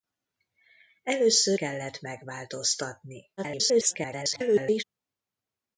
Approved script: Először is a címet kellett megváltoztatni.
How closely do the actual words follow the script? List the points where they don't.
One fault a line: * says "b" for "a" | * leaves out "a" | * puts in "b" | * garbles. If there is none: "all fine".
* leaves out "is a címet"
* garbles